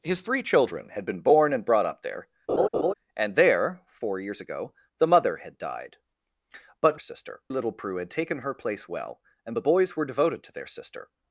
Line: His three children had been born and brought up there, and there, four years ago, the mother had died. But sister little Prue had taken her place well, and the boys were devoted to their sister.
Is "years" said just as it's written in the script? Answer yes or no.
yes